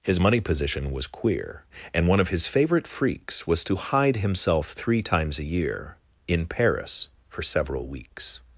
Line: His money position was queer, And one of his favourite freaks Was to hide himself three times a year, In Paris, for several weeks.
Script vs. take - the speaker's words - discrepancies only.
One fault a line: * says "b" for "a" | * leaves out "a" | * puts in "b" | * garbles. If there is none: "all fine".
all fine